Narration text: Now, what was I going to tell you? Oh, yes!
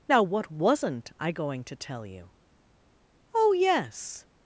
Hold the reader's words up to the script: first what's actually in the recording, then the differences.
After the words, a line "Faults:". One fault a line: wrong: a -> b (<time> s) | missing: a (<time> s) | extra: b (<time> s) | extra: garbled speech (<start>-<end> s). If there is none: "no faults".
Now, what wasn't I going to tell you? Oh, yes!
Faults:
wrong: was -> wasn't (0.5 s)